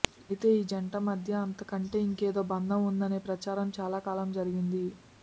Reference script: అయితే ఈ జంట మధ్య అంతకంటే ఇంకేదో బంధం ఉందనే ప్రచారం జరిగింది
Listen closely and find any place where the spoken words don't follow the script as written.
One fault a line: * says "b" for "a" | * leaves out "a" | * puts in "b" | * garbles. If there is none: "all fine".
* puts in "చాలా కాలం"